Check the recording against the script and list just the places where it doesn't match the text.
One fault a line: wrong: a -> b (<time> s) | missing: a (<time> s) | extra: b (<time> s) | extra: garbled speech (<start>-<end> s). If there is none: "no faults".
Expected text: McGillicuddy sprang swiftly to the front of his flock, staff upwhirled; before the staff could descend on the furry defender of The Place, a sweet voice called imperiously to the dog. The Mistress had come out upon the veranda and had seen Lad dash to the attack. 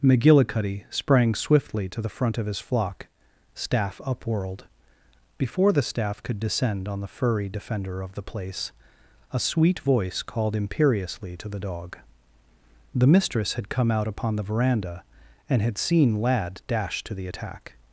no faults